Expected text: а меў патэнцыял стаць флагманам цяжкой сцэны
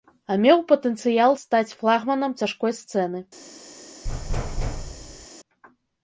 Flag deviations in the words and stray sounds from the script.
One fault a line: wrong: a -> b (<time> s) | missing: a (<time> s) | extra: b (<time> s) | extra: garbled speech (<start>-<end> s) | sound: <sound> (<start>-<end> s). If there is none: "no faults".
sound: thud (4.0-5.3 s)